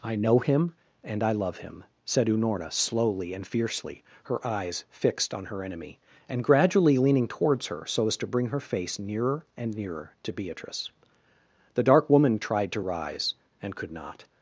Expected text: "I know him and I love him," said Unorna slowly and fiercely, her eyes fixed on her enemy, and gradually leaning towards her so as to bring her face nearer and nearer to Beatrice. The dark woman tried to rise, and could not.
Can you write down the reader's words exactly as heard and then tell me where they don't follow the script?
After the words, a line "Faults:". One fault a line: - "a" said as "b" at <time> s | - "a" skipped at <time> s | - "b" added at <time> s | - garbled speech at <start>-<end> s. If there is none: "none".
"I know him and I love him," said Unorna slowly and fiercely, her eyes fixed on her enemy, and gradually leaning towards her so as to bring her face nearer and nearer to Beatrice. The dark woman tried to rise, and could not.
Faults:
none